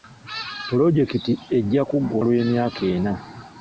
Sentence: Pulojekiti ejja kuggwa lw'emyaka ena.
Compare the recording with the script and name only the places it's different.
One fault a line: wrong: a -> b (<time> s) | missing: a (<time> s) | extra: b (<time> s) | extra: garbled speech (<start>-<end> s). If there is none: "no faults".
no faults